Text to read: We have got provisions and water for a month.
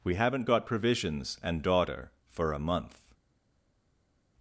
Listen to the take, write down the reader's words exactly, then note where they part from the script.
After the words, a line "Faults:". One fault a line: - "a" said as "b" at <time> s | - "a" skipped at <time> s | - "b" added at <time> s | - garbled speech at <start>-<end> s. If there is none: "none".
We haven't got provisions and daughter for a month.
Faults:
- "have" said as "haven't" at 0.1 s
- "water" said as "daughter" at 1.6 s